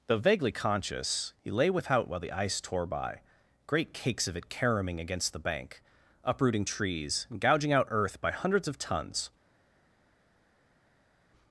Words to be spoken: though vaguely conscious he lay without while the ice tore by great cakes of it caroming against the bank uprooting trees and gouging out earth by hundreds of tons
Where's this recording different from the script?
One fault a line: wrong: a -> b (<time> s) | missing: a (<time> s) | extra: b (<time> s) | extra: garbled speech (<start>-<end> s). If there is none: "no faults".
no faults